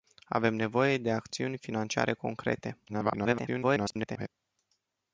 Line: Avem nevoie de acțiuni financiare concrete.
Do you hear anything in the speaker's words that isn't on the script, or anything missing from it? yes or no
yes